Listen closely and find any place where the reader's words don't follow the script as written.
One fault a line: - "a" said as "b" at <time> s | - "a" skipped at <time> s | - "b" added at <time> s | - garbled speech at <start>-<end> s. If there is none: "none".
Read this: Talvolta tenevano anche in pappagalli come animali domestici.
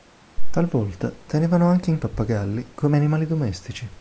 none